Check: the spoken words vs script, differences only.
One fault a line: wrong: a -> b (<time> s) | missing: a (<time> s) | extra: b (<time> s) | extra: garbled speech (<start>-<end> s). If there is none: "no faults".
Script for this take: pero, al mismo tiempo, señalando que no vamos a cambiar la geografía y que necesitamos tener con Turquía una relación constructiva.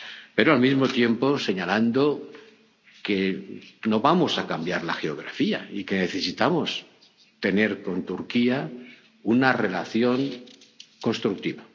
no faults